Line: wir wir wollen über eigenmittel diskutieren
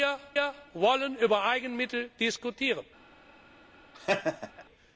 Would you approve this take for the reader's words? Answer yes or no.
yes